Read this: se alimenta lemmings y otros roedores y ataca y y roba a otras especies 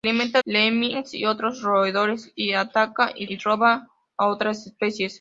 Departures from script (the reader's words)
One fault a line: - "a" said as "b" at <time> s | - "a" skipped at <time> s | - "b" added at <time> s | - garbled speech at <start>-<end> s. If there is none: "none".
none